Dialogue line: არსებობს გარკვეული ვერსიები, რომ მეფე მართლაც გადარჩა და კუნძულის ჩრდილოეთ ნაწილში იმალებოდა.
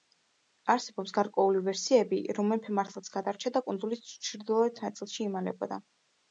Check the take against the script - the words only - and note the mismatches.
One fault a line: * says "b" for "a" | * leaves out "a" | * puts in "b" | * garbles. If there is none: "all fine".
all fine